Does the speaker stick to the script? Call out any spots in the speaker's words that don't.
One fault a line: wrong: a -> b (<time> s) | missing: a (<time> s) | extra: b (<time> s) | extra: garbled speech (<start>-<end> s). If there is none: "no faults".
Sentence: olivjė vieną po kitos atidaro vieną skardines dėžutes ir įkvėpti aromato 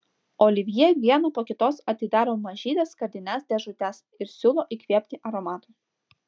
wrong: vieną -> mažytes (2.5 s)
extra: siūlo (4.4 s)